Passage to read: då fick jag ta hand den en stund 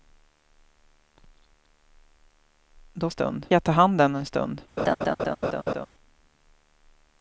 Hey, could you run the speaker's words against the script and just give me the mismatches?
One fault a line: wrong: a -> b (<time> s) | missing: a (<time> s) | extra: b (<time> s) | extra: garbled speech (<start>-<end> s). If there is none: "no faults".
wrong: fick -> stund (3.1 s)